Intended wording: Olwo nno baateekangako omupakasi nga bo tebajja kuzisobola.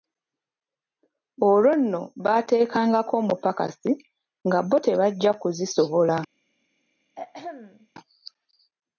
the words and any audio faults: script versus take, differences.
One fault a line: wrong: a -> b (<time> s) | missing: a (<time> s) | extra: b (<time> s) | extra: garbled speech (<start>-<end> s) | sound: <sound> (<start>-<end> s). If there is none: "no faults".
sound: throat clearing (7.1-7.9 s)